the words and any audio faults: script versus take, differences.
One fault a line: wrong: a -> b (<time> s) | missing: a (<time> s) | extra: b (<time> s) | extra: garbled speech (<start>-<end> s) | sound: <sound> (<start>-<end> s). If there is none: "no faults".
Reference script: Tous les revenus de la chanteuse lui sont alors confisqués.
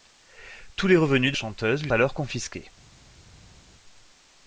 missing: la (1.4 s)
missing: sont (1.9 s)